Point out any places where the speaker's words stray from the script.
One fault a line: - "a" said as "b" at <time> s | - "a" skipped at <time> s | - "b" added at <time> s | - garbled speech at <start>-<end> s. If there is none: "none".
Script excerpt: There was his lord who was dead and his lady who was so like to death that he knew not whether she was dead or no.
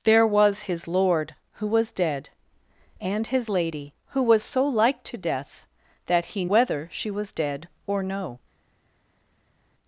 - "knew not" skipped at 6.5 s